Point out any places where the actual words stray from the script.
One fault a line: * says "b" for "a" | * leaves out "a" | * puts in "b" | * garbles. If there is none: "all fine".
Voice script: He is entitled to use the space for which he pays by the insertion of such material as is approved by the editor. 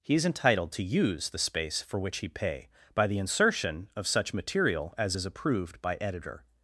* says "pay" for "pays"
* leaves out "the"